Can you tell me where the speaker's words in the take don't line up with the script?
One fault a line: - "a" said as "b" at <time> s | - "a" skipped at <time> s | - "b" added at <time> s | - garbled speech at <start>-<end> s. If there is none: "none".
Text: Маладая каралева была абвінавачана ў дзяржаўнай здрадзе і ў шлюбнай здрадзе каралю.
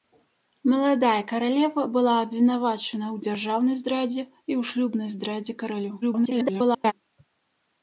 - garbled speech at 6.0-6.9 s